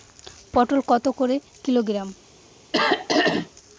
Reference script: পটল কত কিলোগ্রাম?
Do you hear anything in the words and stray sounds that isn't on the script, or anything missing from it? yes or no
yes